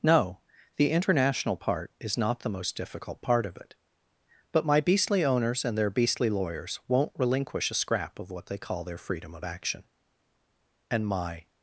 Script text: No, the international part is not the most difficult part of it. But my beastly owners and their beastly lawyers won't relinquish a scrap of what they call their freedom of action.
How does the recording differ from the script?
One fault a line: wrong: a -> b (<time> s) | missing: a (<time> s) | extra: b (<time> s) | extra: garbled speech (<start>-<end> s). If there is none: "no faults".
extra: And my (10.9 s)